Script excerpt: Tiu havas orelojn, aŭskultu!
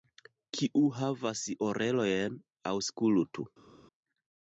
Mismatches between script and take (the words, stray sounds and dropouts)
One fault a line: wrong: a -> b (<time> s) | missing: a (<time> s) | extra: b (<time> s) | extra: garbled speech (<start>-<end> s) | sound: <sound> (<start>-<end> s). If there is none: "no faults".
wrong: Tiu -> Kiu (0.6 s)